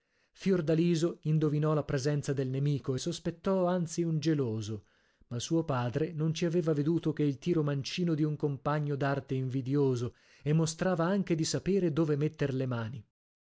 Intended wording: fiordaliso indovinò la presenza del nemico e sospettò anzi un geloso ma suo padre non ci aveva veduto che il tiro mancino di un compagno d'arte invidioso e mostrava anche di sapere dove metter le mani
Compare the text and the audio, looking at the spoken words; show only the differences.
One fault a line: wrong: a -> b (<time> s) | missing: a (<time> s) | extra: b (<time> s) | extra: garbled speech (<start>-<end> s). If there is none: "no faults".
no faults